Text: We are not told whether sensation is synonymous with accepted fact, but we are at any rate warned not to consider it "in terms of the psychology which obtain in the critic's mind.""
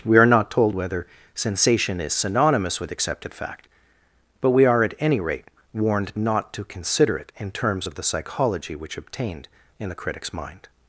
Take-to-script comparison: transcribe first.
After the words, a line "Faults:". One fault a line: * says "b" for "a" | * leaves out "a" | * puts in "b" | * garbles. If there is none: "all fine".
We are not told whether sensation is synonymous with accepted fact, but we are at any rate warned not to consider it "in terms of the psychology which obtained in the critic's mind.""
Faults:
* says "obtained" for "obtain"